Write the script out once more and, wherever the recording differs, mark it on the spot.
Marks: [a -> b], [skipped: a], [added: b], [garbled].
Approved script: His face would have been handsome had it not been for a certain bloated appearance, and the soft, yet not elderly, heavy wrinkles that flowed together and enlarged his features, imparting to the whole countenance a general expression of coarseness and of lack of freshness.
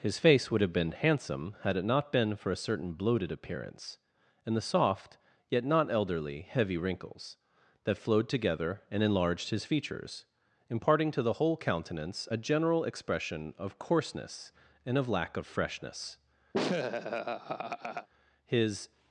His face would have been handsome had it not been for a certain bloated appearance, and the soft, yet not elderly, heavy wrinkles that flowed together and enlarged his features, imparting to the whole countenance a general expression of coarseness and of lack of freshness. [added: His]